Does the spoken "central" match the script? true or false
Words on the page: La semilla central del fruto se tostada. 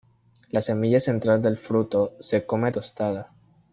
true